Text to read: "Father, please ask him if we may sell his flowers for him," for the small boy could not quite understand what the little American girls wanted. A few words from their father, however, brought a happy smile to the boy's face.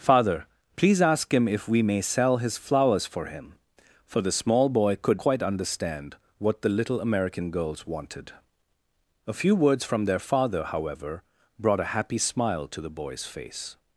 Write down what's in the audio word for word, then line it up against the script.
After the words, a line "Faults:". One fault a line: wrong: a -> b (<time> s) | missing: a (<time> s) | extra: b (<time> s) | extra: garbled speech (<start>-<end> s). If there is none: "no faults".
"Father, please ask him if we may sell his flowers for him," for the small boy could quite understand what the little American girls wanted. A few words from their father, however, brought a happy smile to the boy's face.
Faults:
missing: not (5.2 s)